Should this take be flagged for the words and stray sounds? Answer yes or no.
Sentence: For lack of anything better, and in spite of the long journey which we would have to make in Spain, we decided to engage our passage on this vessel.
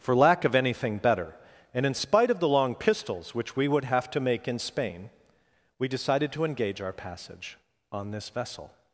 yes